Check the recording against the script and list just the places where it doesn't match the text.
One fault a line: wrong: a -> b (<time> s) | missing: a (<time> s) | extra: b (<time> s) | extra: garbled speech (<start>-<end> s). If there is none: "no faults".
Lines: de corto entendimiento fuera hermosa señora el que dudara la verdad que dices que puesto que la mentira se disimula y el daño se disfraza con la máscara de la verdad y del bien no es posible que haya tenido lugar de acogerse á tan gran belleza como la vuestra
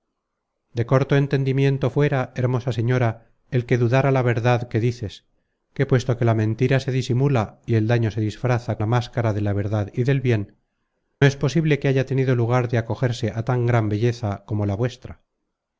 missing: con (8.8 s)
missing: no (10.6 s)